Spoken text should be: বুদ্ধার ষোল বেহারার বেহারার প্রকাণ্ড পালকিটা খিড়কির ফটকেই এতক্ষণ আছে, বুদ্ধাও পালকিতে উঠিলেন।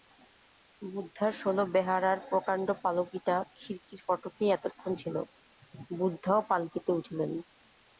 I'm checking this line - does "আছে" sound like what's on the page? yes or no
no